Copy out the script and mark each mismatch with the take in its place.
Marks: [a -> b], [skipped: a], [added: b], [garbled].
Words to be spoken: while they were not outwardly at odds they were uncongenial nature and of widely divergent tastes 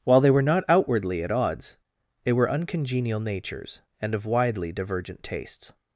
while they were not outwardly at odds they were uncongenial [nature -> natures] and of widely divergent tastes